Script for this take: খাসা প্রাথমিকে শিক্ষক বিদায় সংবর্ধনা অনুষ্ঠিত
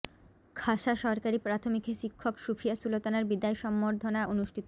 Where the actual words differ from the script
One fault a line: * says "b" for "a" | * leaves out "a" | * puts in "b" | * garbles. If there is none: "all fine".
* puts in "সরকারি"
* puts in "সুফিয়া সুলতানার"